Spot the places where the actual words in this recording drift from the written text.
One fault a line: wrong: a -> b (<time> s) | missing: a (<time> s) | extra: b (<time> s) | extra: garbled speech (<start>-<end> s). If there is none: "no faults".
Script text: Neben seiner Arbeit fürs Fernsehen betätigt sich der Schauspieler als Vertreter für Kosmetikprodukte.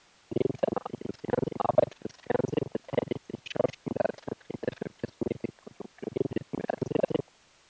extra: garbled speech (0.9-1.6 s)
missing: der (3.4 s)
extra: garbled speech (6.1-7.2 s)